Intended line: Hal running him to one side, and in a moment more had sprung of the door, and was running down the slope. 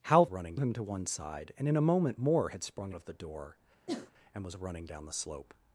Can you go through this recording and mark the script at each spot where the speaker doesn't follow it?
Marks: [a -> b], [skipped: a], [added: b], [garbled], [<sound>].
Hal running him to one side, and in a moment more had sprung of the door, [sneeze] and was running down the slope.